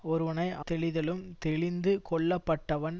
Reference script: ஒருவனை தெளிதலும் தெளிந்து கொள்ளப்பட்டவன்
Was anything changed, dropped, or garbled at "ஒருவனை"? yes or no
no